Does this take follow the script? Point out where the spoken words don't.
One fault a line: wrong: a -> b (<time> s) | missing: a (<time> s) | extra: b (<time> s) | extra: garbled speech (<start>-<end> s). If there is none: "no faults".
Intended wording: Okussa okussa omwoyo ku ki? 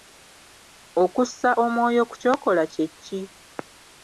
missing: okussa (1.5 s)
extra: ky'okola kye (2.2 s)